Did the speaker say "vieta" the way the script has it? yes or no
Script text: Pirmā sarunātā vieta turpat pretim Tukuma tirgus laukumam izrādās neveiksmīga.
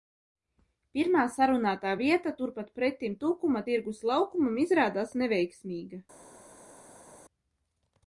yes